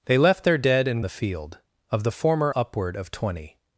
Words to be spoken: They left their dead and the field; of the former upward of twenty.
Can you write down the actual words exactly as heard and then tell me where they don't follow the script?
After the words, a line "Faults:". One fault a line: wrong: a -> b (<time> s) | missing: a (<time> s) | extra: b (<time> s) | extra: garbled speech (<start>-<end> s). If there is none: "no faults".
They left their dead and the field; of the former upward of twenty.
Faults:
no faults